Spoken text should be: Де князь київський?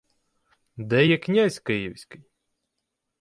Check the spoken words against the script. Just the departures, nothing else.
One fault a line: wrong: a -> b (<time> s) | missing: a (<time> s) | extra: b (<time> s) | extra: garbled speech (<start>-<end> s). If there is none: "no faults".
extra: є (1.1 s)